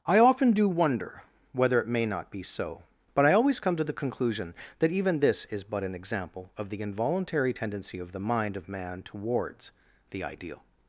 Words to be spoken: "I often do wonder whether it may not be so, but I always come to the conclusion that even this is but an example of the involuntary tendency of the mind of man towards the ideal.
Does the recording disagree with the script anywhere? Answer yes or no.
no